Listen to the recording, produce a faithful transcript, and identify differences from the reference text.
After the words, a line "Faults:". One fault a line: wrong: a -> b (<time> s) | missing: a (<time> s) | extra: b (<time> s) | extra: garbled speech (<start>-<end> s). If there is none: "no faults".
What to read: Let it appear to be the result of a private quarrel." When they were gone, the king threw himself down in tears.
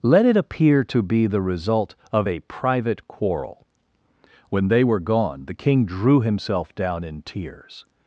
Let it appear to be the result of a private quarrel." When they were gone, the king drew himself down in tears.
Faults:
wrong: threw -> drew (5.9 s)